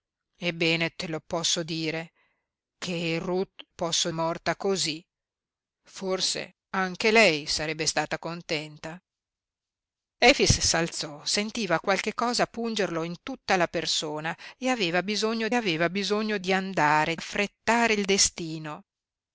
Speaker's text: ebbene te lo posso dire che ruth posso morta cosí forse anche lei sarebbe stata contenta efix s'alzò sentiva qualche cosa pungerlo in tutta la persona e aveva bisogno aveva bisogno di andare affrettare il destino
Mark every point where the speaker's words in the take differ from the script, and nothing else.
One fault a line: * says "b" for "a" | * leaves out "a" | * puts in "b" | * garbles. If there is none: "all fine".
all fine